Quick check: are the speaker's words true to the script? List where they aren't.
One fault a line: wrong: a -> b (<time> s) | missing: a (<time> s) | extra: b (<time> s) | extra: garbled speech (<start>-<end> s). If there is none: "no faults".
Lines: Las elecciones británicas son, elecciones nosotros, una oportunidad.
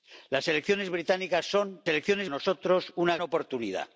no faults